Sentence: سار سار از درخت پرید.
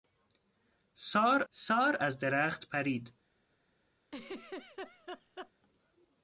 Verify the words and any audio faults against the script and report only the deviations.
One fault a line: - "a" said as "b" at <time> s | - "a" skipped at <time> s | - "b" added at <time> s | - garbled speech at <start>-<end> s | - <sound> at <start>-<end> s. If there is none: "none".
- laugh at 4.1-5.5 s